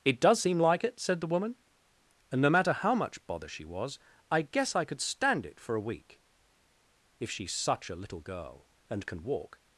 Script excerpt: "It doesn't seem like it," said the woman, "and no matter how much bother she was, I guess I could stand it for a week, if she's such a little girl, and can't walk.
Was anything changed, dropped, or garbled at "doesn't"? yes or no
yes